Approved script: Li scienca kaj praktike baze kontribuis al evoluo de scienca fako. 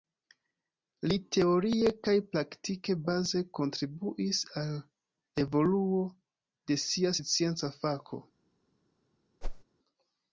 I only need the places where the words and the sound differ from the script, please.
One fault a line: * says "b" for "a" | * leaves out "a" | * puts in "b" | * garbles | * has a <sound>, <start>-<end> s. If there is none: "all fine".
* says "teorie" for "scienca"
* puts in "sia"
* has a whoosh, 9.4-9.6 s